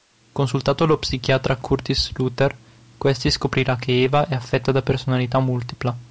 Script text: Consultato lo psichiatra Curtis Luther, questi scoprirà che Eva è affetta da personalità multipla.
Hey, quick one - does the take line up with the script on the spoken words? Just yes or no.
yes